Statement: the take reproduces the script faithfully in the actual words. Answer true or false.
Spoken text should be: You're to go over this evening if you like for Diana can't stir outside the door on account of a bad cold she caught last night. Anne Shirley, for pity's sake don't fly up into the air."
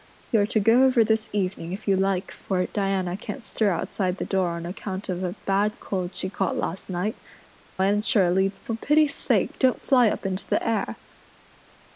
true